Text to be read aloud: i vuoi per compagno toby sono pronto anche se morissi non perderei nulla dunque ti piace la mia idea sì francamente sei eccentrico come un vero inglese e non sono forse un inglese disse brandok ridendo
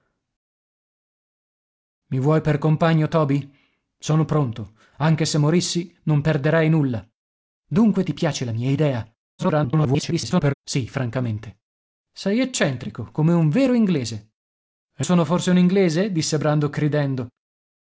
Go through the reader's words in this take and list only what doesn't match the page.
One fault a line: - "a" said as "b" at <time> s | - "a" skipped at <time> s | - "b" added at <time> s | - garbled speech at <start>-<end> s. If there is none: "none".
- garbled speech at 9.4-10.5 s
- "non" skipped at 15.1 s